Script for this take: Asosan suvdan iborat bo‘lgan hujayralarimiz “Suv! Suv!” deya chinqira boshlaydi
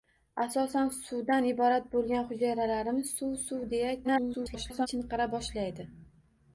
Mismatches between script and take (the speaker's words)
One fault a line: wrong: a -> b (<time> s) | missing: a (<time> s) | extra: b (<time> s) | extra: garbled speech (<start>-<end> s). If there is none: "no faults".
extra: garbled speech (4.0-4.9 s)